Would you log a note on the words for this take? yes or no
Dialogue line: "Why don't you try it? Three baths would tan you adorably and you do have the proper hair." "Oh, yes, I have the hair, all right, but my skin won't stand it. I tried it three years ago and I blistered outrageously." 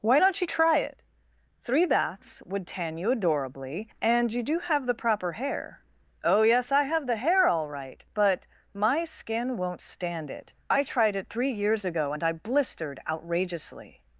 no